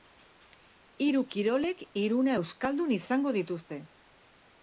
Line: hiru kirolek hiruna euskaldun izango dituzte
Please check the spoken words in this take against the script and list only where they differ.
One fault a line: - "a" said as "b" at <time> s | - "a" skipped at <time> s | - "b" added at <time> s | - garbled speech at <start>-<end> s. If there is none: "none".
none